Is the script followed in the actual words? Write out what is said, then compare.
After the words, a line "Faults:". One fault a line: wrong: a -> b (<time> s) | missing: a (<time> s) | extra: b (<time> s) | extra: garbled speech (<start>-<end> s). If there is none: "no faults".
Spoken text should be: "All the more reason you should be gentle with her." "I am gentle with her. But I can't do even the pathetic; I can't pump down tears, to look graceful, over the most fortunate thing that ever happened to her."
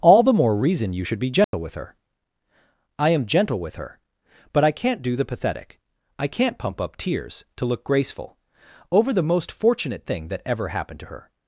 "All the more reason you should be gentle with her." "I am gentle with her. But I can't do the pathetic; I can't pump up tears, to look graceful, over the most fortunate thing that ever happened to her."
Faults:
missing: even (5.2 s)
wrong: down -> up (6.8 s)